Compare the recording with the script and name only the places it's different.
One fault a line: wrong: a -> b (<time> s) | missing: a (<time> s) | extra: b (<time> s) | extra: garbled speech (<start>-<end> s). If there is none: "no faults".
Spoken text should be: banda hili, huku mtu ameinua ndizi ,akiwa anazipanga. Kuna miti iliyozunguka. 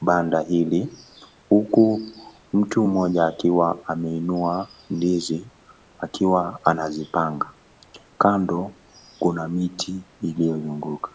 extra: mmoja akiwa (2.9 s)
extra: Kando (8.2 s)